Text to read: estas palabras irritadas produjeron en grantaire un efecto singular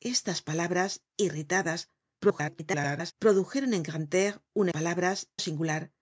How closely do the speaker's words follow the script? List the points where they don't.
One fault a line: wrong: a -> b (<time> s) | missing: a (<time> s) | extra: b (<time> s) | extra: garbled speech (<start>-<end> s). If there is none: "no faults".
extra: garbled speech (2.2-3.1 s)
wrong: efecto -> palabras (4.7 s)